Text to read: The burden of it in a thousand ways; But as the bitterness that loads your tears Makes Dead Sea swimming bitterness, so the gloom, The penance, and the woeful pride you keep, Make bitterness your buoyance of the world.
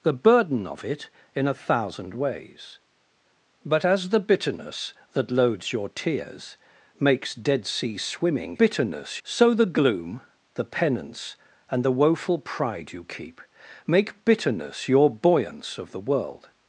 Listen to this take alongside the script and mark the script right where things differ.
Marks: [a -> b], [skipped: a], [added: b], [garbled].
The burden of it in a thousand ways; But as the bitterness that loads your tears Makes Dead Sea swimming bitterness, so the gloom, The penance, and the woeful pride you keep, Make bitterness your buoyance of the world.